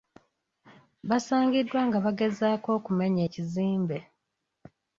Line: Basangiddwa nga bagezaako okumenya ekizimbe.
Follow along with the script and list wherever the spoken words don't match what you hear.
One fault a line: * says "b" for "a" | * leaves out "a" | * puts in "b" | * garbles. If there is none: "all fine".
all fine